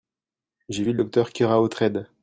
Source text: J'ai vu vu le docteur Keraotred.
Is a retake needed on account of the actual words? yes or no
yes